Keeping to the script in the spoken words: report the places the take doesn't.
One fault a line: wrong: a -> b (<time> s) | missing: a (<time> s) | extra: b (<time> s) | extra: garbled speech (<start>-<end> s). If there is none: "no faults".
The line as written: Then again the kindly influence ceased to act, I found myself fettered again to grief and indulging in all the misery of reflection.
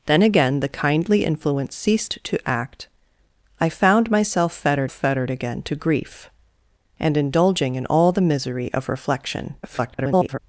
extra: fettered (4.9 s)
extra: garbled speech (9.6-10.4 s)